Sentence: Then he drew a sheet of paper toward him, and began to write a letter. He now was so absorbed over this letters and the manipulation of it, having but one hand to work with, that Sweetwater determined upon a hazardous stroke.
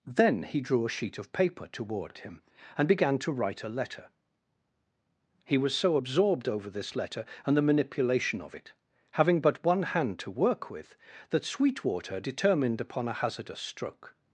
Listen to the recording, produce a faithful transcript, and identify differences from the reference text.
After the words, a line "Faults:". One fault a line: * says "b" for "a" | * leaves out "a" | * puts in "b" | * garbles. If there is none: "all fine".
Then he drew a sheet of paper toward him, and began to write a letter. He was so absorbed over this letter and the manipulation of it, having but one hand to work with, that Sweetwater determined upon a hazardous stroke.
Faults:
* leaves out "now"
* says "letter" for "letters"